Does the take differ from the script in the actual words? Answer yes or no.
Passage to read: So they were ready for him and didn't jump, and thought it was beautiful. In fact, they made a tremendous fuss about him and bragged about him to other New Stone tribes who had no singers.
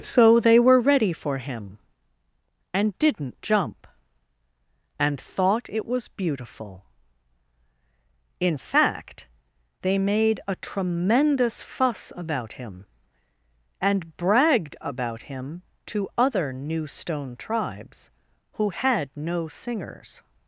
no